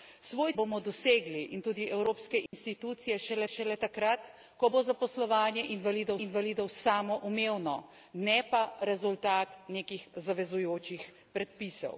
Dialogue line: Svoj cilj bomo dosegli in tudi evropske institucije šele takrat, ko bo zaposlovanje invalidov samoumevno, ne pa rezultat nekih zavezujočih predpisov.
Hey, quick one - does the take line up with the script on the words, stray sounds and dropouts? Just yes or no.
no